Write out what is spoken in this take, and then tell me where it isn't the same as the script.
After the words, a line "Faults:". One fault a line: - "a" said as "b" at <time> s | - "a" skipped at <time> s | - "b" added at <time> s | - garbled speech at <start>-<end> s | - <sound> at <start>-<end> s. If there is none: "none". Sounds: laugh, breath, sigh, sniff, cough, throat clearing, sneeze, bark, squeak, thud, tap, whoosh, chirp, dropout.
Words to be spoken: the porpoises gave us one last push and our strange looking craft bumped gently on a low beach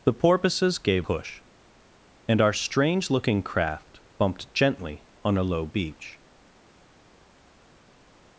the porpoises gave push and our strange looking craft bumped gently on a low beach
Faults:
- "us one last" skipped at 1.1 s